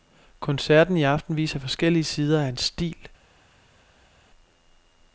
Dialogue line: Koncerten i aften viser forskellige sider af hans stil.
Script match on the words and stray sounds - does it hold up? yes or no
yes